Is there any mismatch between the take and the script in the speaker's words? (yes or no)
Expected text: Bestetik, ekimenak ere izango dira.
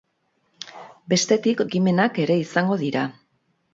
no